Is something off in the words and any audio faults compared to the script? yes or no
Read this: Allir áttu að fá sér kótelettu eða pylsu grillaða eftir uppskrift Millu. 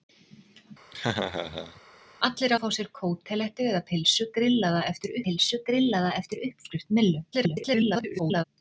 yes